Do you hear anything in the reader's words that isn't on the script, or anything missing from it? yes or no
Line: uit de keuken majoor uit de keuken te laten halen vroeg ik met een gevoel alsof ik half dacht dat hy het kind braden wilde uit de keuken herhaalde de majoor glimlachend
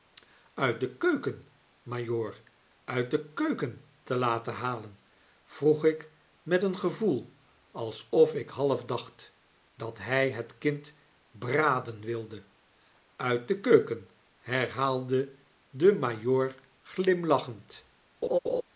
no